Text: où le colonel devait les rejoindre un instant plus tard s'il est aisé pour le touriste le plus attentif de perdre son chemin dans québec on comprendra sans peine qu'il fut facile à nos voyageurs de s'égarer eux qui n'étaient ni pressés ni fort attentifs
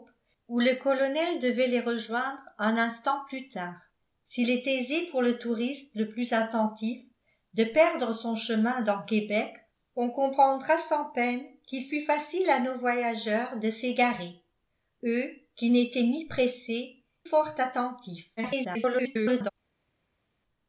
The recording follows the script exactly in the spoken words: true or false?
false